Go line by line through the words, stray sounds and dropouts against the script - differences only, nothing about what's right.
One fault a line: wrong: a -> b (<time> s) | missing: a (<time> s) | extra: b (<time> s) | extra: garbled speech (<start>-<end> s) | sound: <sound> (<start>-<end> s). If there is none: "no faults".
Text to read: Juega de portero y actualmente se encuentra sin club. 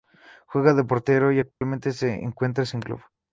sound: dropout (1.5-1.6 s)